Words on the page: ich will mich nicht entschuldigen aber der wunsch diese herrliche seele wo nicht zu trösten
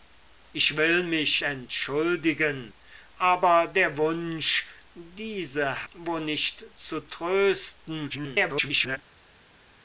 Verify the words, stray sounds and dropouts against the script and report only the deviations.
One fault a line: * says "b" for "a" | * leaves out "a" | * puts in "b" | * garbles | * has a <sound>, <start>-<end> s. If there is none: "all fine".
* leaves out "nicht"
* leaves out "herrliche seele"
* garbles